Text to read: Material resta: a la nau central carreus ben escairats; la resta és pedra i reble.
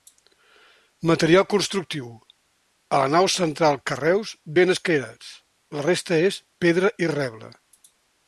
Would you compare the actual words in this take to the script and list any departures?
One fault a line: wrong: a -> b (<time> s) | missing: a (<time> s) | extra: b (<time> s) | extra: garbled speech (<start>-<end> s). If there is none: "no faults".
wrong: resta -> constructiu (1.5 s)